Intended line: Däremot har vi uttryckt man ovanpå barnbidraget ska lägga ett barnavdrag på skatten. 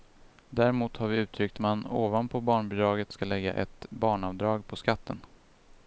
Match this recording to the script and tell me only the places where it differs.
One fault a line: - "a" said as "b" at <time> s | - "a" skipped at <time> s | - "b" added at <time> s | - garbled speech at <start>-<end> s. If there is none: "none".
none